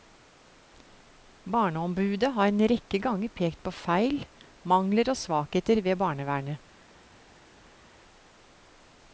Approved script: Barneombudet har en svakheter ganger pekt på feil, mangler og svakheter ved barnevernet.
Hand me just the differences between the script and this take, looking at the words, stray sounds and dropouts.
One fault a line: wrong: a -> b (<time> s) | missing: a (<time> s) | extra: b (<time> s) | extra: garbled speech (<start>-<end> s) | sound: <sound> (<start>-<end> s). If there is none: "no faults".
wrong: svakheter -> rekke (2.7 s)